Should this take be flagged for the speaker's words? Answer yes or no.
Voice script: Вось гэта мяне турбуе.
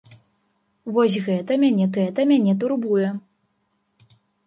yes